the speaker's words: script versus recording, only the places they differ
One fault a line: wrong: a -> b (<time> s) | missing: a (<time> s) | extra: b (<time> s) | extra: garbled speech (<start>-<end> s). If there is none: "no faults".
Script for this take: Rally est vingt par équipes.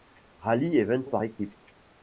no faults